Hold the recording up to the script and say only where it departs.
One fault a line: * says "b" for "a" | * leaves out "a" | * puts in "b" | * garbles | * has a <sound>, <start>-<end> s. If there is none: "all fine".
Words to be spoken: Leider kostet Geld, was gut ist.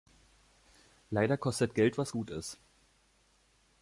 all fine